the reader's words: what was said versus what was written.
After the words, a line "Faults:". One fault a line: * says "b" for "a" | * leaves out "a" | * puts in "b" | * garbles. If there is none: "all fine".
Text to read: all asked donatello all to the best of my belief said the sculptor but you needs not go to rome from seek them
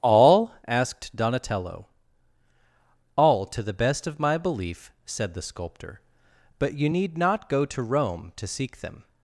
all asked donatello all to the best of my belief said the sculptor but you need not go to rome to seek them
Faults:
* says "need" for "needs"
* says "to" for "from"